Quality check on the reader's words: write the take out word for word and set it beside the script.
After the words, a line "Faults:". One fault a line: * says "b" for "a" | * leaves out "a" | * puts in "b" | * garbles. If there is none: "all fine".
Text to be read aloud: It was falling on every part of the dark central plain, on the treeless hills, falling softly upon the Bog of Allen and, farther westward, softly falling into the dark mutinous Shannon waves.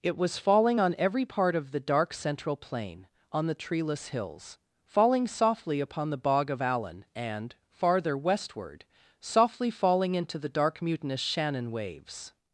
It was falling on every part of the dark central plain, on the treeless hills, falling softly upon the Bog of Allen and, farther westward, softly falling into the dark mutinous Shannon waves.
Faults:
all fine